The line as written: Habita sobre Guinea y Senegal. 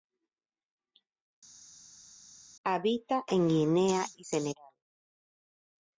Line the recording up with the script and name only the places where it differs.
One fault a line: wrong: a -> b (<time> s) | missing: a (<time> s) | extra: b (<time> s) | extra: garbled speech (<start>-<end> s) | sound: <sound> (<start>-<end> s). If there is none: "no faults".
wrong: sobre -> en (3.3 s)